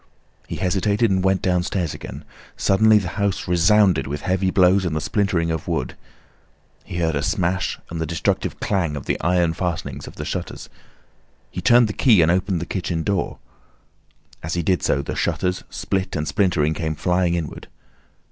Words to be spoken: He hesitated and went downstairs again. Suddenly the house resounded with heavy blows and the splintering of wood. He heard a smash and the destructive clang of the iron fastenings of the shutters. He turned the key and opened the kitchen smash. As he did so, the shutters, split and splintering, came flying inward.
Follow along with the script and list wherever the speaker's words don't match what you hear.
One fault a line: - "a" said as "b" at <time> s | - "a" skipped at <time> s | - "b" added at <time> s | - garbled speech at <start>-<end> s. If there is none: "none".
- "smash" said as "door" at 13.0 s